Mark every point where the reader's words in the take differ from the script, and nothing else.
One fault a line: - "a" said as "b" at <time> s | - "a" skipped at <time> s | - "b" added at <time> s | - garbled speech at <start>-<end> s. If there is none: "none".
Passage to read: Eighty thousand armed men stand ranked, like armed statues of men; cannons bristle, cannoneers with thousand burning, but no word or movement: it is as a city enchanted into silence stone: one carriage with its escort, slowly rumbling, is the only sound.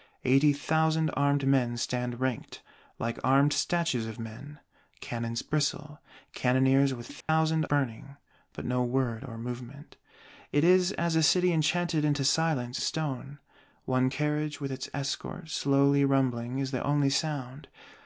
none